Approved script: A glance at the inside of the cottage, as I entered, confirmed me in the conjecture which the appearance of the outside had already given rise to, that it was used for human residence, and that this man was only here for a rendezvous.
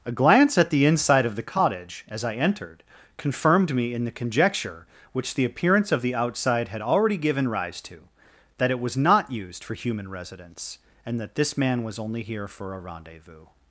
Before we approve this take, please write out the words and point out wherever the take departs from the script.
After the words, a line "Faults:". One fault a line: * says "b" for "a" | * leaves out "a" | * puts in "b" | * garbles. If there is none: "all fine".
A glance at the inside of the cottage, as I entered, confirmed me in the conjecture which the appearance of the outside had already given rise to, that it was not used for human residence, and that this man was only here for a rendezvous.
Faults:
* puts in "not"